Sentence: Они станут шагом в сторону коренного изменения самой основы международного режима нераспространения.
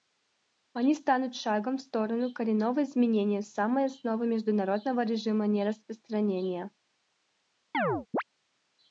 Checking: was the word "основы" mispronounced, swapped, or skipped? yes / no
no